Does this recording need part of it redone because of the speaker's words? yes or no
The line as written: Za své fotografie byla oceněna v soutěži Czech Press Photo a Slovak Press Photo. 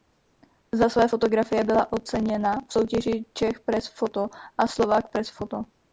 no